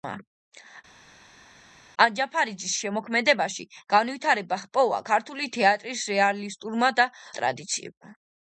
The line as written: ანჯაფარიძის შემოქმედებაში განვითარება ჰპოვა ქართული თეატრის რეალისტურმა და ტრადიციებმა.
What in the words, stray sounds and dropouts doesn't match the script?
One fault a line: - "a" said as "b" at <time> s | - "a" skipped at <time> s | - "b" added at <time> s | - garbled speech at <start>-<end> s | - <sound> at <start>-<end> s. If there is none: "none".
none